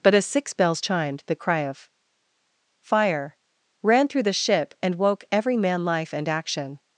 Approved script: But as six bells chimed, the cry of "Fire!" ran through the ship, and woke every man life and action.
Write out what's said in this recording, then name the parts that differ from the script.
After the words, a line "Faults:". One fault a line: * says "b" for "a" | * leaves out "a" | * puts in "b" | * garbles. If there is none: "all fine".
But as six bells chimed, the cry of "Fire!" ran through the ship, and woke every man life and action.
Faults:
all fine